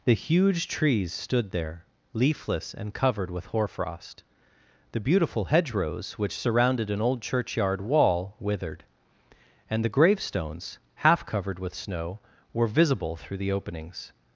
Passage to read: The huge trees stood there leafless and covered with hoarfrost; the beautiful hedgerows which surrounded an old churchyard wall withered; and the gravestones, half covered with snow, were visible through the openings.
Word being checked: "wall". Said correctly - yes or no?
yes